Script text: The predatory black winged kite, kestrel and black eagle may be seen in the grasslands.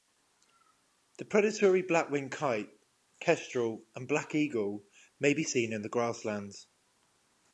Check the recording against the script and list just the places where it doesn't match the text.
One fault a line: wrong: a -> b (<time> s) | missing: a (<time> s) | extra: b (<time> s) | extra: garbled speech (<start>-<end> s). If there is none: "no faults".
no faults